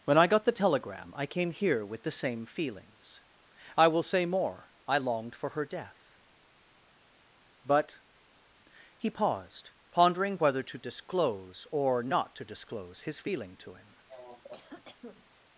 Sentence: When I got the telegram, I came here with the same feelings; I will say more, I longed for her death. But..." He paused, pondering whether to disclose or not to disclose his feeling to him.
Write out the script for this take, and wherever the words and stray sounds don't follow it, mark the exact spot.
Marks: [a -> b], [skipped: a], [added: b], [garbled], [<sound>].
When I got the telegram, I came here with the same feelings; I will say more, I longed for her death. But..." He paused, pondering whether to disclose or not to disclose his feeling to him. [cough]